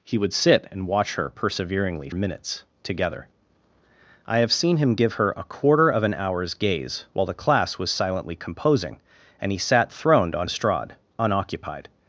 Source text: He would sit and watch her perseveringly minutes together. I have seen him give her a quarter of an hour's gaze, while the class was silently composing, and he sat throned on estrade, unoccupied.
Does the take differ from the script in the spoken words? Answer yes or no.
no